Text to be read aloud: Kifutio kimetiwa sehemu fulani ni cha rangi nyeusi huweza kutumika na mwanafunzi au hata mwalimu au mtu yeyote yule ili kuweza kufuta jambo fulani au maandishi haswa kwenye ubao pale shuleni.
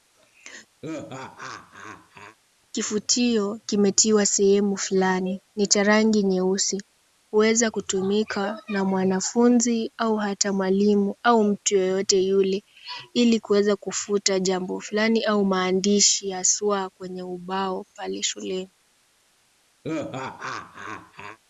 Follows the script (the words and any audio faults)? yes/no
no